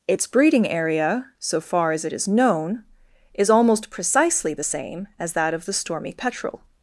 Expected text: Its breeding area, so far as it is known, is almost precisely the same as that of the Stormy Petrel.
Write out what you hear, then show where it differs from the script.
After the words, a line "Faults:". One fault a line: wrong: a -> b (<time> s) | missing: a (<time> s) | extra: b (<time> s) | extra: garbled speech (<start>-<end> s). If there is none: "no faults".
Its breeding area, so far as it is known, is almost precisely the same as that of the Stormy Petrel.
Faults:
no faults